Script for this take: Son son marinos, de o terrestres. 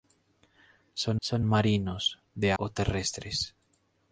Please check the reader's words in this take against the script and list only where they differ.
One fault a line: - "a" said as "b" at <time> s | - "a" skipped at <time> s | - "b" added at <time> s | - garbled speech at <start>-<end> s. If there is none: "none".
none